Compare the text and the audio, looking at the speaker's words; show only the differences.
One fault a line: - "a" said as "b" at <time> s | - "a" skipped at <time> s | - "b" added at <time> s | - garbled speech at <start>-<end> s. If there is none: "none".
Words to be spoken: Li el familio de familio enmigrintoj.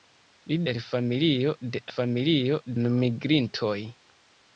none